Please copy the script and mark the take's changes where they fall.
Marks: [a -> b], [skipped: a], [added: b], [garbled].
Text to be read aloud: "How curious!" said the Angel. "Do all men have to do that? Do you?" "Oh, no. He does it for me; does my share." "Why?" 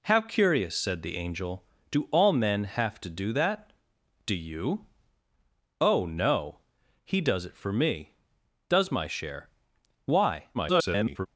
"How curious!" said the Angel. "Do all men have to do that? Do you?" "Oh, no. He does it for me; does my share." "Why?" [garbled]